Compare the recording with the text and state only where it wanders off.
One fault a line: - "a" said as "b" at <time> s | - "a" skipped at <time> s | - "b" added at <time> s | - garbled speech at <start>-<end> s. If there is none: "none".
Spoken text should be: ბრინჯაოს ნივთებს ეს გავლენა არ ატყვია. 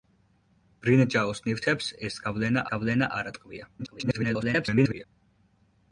- "გავლენა" added at 2.7 s
- garbled speech at 3.8-5.1 s